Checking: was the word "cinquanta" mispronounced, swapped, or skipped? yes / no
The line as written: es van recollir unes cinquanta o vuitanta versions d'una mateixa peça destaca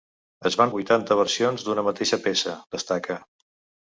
yes